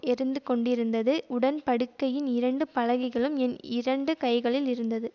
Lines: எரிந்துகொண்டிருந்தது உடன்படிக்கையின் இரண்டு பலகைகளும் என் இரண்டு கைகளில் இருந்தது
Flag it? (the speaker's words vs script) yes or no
no